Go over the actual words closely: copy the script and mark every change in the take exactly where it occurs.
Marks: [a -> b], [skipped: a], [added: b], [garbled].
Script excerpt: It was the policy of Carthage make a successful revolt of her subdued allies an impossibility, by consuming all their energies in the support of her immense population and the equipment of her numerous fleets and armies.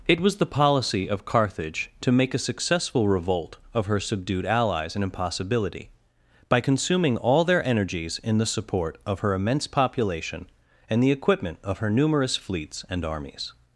It was the policy of Carthage [added: to] make a successful revolt of her subdued allies an impossibility, by consuming all their energies in the support of her immense population and the equipment of her numerous fleets and armies.